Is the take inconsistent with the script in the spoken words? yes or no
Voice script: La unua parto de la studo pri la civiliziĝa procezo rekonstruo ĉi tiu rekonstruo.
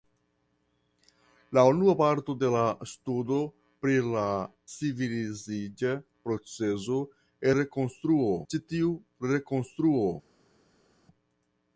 no